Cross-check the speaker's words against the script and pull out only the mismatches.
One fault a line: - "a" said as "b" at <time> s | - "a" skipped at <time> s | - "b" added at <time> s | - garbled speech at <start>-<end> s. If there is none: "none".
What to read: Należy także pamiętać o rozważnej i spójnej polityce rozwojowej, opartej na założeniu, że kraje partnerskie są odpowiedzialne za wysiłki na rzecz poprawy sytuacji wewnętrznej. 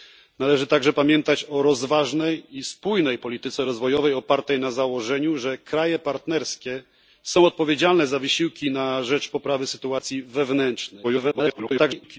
- garbled speech at 11.0-12.2 s